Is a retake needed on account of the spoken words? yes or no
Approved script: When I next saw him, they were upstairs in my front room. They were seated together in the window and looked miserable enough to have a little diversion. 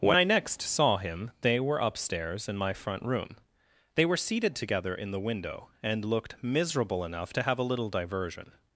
no